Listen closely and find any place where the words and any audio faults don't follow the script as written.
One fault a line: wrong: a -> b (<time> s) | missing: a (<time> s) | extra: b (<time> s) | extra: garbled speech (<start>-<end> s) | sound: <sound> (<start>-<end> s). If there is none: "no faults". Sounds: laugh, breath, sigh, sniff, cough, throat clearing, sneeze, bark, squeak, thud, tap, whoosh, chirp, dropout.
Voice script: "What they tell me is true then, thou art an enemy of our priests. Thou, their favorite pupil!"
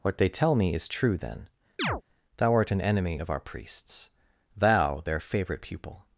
sound: chirp (1.8-2.0 s)